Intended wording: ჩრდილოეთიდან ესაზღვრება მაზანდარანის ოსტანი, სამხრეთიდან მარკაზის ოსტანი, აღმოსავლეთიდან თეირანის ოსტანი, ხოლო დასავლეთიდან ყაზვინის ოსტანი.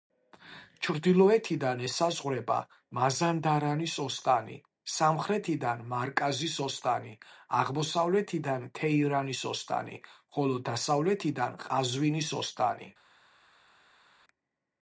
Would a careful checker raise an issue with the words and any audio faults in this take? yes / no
no